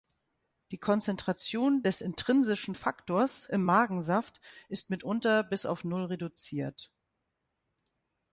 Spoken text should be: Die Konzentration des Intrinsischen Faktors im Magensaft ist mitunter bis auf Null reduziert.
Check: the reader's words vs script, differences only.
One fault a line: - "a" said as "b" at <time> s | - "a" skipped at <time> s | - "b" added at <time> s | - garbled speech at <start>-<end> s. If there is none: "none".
none